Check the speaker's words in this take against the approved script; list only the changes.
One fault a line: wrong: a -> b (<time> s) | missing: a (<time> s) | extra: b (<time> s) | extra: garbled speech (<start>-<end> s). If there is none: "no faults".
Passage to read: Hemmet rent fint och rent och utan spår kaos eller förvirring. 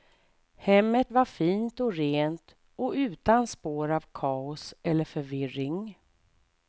wrong: rent -> var (1.1 s)
extra: av (3.9 s)